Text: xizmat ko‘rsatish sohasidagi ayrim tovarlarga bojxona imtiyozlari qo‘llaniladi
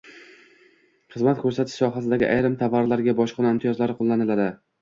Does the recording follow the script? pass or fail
pass